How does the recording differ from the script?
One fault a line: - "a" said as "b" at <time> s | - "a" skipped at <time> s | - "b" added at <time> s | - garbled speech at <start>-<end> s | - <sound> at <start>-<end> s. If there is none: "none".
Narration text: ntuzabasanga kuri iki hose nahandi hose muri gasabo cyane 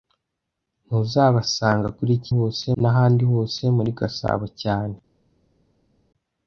none